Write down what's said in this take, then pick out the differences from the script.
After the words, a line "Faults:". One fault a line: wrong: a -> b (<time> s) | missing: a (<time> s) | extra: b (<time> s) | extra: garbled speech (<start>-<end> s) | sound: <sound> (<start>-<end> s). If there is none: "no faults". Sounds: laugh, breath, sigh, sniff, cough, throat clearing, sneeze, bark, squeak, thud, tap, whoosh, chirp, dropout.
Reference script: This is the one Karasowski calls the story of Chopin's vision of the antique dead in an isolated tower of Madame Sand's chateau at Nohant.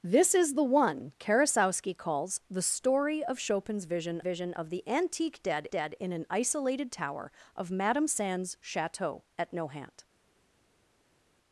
This is the one Karasowski calls the story of Chopin's vision vision of the antique dead dead in an isolated tower of Madame Sand's chateau at Nohant.
Faults:
extra: vision (4.2 s)
extra: dead (5.7 s)